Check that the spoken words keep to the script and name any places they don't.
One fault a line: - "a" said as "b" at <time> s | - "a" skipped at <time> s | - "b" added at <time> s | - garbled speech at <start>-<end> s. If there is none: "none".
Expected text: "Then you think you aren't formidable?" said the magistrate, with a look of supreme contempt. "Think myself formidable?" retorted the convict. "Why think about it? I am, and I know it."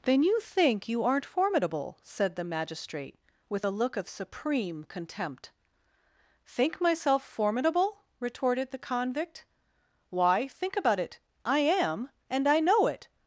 none